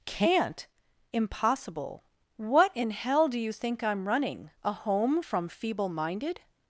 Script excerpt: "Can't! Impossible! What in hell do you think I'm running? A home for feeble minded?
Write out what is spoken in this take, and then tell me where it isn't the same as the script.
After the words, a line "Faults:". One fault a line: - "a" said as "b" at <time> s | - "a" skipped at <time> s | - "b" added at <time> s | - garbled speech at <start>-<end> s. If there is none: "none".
"Can't! Impossible! What in hell do you think I'm running? A home from feeble minded?
Faults:
- "for" said as "from" at 5.2 s